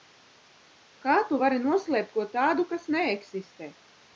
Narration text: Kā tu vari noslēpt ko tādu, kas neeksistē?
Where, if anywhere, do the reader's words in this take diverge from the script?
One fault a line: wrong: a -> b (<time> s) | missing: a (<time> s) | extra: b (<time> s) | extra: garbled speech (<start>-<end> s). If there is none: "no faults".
no faults